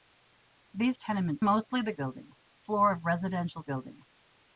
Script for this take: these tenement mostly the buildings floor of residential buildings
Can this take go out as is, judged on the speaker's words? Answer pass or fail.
pass